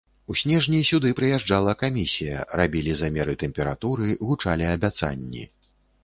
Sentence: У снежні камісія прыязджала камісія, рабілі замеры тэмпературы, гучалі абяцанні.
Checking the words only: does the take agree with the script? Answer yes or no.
no